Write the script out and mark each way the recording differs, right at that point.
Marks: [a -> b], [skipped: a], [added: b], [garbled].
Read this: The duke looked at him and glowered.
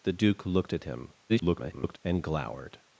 The duke looked at him [garbled] and glowered.